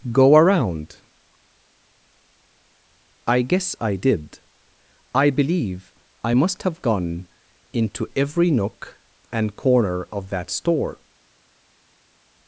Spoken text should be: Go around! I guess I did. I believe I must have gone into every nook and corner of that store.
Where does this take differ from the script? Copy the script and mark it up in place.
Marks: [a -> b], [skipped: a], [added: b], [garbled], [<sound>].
Go around! I guess I did. I believe I must have gone into every nook and corner of that store.